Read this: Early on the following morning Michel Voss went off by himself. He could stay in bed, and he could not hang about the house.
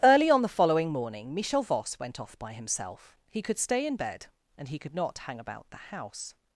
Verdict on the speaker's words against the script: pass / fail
pass